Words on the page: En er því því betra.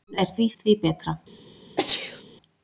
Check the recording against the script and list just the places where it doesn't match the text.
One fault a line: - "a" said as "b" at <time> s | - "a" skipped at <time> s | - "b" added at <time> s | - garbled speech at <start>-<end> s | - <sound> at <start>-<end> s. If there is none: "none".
- sneeze at 1.8-2.2 s